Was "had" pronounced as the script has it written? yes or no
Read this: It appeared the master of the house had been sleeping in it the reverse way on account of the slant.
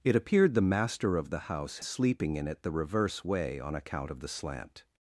no